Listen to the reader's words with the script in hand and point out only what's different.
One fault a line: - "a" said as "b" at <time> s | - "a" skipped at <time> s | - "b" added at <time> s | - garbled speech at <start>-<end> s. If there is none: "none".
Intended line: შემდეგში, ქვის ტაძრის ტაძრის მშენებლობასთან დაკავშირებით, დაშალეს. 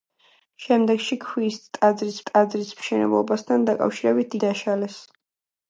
none